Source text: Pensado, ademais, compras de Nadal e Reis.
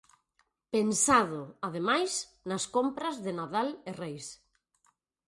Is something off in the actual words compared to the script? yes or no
yes